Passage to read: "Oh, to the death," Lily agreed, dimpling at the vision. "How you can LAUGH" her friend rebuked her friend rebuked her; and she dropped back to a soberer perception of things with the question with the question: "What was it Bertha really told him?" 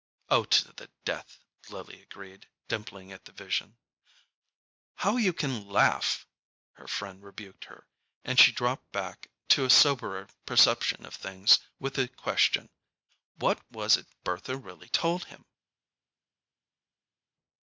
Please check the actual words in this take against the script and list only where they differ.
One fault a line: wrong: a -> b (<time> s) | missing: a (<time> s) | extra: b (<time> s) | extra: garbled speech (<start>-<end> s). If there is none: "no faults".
missing: friend rebuked her (7.9 s)
missing: with the question (12.7 s)